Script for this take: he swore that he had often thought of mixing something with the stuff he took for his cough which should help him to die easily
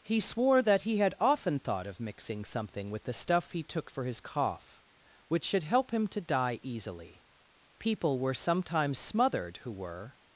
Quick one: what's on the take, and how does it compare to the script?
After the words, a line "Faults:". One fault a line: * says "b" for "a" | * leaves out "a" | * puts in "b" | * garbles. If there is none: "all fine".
he swore that he had often thought of mixing something with the stuff he took for his cough which should help him to die easily people were sometimes smothered who were
Faults:
* puts in "people were sometimes smothered who were"